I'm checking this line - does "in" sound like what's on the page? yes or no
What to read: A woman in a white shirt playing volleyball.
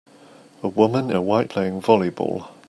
no